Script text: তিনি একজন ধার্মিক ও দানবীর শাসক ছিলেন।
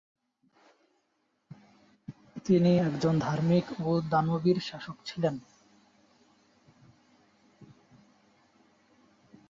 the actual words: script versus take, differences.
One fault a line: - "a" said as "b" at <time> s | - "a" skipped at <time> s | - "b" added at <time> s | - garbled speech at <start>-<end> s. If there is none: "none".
none